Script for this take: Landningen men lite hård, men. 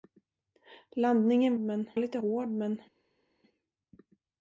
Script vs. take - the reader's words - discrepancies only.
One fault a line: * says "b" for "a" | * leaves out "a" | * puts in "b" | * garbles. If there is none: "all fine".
all fine